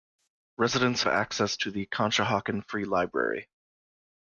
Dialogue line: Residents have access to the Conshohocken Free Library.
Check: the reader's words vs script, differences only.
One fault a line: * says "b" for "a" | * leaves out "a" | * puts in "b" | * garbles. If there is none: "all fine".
* leaves out "have"